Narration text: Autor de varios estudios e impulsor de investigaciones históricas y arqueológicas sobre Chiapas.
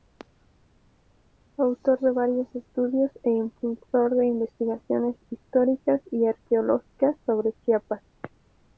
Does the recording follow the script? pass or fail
pass